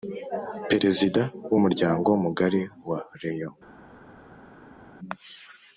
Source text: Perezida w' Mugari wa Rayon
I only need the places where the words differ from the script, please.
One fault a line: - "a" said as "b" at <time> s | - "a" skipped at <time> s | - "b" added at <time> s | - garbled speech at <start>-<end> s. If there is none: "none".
- "Umuryango" added at 1.6 s